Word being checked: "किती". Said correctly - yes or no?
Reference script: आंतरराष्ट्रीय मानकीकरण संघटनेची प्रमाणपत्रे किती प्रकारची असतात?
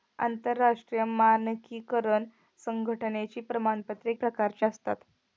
no